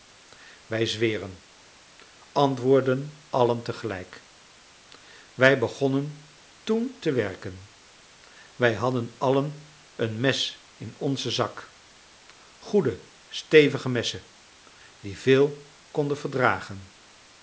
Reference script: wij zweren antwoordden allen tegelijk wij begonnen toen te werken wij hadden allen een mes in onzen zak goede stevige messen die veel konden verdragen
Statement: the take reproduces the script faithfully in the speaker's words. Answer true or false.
true